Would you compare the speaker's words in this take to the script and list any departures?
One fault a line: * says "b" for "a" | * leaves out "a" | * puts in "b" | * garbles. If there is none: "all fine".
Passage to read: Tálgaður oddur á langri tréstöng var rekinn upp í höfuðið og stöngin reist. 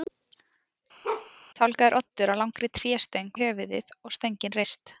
* leaves out "var rekinn upp"